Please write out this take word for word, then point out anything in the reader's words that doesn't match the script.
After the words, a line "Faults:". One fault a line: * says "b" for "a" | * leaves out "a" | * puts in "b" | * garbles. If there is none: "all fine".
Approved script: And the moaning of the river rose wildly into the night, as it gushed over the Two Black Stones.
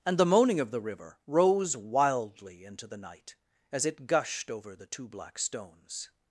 And the moaning of the river rose wildly into the night, as it gushed over the Two Black Stones.
Faults:
all fine